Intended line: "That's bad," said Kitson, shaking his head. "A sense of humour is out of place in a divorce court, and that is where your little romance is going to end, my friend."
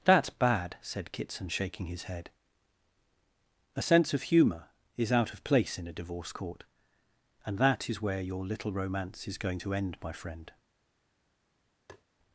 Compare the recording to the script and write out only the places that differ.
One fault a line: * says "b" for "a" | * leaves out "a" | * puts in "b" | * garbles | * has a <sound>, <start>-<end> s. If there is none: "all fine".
* has a tap, 11.9-12.0 s